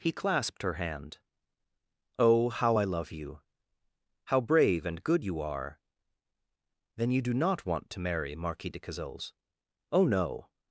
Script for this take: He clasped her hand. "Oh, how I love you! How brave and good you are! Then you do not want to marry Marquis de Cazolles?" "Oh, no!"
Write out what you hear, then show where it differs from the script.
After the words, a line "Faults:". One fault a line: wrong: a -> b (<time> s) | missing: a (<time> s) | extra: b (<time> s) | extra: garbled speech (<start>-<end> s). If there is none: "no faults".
He clasped her hand. "Oh, how I love you! How brave and good you are! Then you do not want to marry Marquis de Cazolles?" "Oh, no!"
Faults:
no faults